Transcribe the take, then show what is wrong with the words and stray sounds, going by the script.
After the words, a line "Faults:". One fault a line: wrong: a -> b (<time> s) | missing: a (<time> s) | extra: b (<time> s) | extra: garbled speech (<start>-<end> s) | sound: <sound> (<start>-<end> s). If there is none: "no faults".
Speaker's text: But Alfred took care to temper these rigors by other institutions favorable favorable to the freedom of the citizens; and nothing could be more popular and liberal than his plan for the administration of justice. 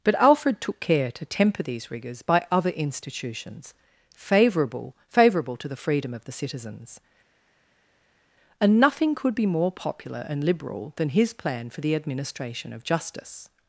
But Alfred took care to temper these rigors by other institutions favorable favorable to the freedom of the citizens; and nothing could be more popular and liberal than his plan for the administration of justice.
Faults:
no faults